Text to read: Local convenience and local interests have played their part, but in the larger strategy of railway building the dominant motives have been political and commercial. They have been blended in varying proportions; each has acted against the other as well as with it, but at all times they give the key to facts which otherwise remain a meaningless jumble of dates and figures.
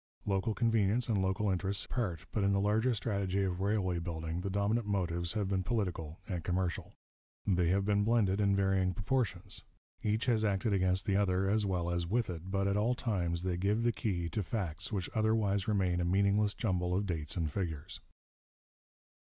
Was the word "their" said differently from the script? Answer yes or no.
yes